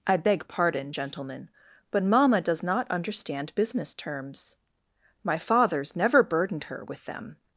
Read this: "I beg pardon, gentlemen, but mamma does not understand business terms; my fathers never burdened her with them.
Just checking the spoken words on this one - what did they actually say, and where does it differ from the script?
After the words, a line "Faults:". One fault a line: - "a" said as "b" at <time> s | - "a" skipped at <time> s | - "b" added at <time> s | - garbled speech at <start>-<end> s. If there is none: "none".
"I beg pardon, gentlemen, but mamma does not understand business terms; my fathers never burdened her with them.
Faults:
none